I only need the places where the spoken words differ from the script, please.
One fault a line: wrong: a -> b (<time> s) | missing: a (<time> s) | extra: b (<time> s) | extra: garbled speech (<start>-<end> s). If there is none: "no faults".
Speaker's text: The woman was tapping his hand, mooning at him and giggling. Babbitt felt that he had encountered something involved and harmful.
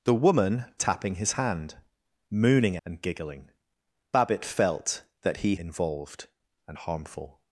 missing: was (0.7 s)
missing: at him (2.8 s)
missing: had encountered something (5.6 s)